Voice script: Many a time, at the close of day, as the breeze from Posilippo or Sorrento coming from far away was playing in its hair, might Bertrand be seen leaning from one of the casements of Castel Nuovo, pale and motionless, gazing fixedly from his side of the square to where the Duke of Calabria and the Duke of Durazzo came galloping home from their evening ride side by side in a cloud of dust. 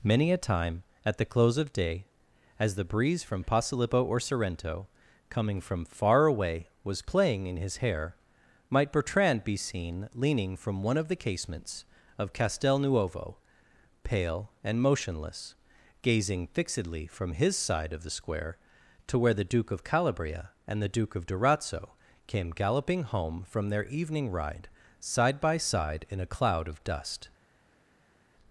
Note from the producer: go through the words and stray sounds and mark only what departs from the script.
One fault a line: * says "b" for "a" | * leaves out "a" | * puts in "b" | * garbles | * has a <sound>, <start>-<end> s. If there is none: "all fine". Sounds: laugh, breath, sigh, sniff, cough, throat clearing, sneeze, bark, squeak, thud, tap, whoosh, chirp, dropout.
* says "his" for "its"